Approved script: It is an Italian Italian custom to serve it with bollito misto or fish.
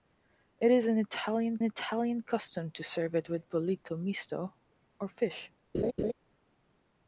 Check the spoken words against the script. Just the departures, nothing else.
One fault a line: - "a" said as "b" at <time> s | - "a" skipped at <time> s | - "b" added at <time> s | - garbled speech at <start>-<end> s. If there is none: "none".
none